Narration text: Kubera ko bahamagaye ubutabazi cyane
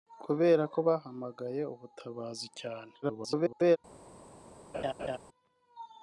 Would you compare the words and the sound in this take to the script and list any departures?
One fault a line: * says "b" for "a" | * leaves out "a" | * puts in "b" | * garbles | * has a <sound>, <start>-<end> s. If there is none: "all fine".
* garbles
* has a laugh, 4.7-5.2 s